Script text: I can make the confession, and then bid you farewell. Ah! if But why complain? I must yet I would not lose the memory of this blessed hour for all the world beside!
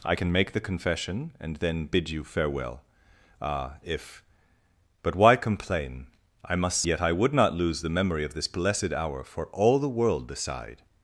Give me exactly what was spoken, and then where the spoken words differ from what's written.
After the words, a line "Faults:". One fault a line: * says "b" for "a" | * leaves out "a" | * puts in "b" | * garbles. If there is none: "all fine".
I can make the confession, and then bid you farewell. Ah! if But why complain? I must yet I would not lose the memory of this blessed hour for all the world beside!
Faults:
all fine